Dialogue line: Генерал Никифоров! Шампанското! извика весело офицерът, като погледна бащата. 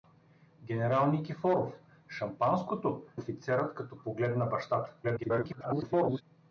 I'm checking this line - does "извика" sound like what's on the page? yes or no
no